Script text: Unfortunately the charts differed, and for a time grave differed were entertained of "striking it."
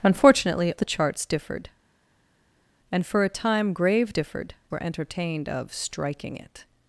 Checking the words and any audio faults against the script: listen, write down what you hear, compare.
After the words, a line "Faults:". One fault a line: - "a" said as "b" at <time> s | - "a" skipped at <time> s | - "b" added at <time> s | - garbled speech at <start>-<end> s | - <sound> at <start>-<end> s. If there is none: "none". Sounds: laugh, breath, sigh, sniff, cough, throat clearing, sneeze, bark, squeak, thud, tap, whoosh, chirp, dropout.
Unfortunately the charts differed, and for a time grave differed were entertained of "striking it."
Faults:
none